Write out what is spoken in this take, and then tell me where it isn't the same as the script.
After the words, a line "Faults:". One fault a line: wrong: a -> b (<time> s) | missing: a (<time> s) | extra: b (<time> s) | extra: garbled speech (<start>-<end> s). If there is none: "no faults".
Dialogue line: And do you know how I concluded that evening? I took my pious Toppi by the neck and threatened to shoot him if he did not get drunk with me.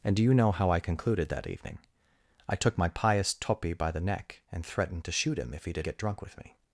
And do you know how I concluded that evening? I took my pious Toppi by the neck and threatened to shoot him if he did get drunk with me.
Faults:
missing: not (5.9 s)